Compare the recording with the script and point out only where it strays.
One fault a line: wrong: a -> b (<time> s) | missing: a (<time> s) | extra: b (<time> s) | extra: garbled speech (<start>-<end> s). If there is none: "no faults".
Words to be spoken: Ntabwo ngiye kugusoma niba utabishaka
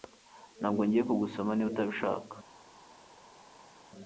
no faults